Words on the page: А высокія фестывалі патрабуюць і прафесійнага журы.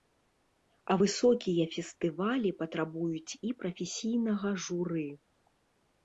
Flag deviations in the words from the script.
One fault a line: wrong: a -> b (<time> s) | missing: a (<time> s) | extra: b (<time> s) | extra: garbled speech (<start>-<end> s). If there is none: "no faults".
no faults